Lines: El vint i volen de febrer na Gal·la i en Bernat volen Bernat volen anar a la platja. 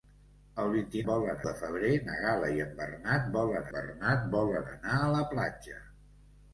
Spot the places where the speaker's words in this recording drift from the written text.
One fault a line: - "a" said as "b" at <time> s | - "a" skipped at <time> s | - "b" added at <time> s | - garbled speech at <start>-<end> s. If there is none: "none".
none